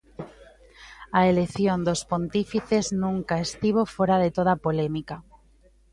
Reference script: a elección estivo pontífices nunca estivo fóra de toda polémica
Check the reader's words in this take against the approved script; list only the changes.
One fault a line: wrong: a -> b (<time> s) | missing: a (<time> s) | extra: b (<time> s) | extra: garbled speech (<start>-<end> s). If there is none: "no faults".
wrong: estivo -> dos (1.9 s)